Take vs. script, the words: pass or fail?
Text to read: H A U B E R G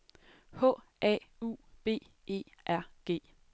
pass